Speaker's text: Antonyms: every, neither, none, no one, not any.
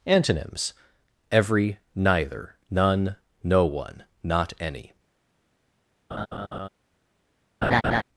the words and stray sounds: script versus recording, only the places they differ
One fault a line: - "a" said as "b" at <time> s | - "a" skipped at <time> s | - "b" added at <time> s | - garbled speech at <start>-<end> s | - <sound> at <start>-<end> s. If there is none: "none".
- laugh at 6.1-6.7 s
- laugh at 7.6-8.0 s